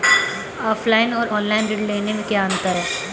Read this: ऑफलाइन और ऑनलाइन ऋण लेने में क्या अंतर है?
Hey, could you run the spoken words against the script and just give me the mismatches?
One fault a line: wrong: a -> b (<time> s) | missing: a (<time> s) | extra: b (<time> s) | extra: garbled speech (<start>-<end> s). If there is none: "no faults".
no faults